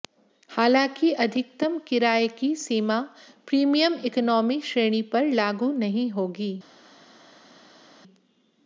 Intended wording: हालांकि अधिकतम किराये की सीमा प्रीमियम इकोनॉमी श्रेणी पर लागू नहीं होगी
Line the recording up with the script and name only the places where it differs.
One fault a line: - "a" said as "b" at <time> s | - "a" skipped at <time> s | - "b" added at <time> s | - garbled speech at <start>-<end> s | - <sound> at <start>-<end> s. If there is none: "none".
none